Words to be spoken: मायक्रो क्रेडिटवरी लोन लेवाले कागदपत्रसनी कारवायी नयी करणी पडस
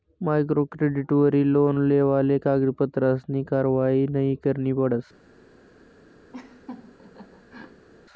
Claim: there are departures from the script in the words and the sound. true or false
true